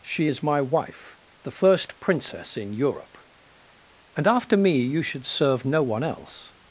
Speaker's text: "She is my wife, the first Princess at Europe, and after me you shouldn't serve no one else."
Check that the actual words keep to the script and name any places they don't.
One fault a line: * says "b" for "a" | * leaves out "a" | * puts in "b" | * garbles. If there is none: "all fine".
* says "in" for "at"
* says "should" for "shouldn't"